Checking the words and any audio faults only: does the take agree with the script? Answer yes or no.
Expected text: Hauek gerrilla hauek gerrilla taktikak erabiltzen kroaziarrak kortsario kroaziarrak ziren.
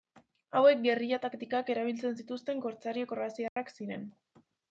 no